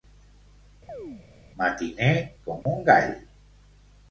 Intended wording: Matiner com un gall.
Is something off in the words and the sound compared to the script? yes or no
yes